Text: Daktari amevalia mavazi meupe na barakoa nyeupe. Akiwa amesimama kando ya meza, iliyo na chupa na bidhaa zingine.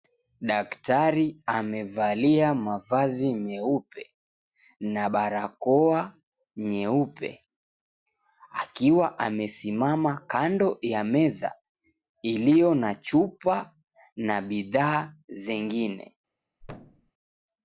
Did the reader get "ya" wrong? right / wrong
right